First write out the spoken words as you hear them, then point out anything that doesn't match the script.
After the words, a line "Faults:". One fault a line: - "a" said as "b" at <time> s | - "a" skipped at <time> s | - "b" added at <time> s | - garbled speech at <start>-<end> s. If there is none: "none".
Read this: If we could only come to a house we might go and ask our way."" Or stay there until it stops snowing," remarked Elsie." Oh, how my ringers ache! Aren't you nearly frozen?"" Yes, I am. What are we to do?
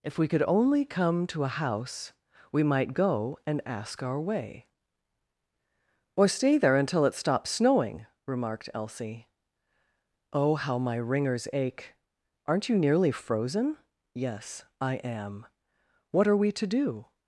If we could only come to a house we might go and ask our way."" Or stay there until it stops snowing," remarked Elsie." Oh, how my ringers ache! Aren't you nearly frozen?"" Yes, I am. What are we to do?
Faults:
none